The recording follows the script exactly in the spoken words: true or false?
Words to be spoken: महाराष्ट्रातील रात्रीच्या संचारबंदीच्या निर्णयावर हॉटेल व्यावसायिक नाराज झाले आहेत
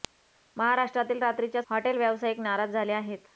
false